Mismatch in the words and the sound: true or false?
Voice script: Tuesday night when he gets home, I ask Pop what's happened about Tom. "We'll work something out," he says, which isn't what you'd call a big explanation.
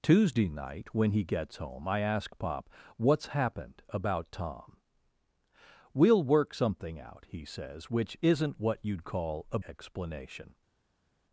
true